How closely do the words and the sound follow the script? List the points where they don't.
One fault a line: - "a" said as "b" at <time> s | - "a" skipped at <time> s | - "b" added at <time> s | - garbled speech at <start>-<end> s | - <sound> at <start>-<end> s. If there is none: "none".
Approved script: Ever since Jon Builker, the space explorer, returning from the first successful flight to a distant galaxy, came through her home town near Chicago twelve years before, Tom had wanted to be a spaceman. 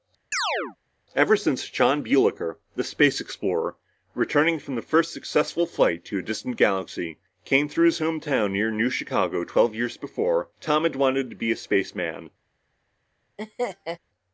- chirp at 0.3-0.8 s
- "her" said as "his" at 7.9 s
- "New" added at 8.7 s
- laugh at 13.4-14.0 s